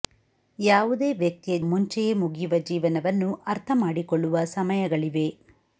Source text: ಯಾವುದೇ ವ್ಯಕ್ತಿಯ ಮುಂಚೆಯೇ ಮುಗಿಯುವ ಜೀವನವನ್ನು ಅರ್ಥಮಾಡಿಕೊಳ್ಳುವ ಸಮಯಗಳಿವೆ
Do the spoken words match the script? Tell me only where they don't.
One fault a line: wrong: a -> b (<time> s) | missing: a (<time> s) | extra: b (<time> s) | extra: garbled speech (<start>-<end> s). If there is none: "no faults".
no faults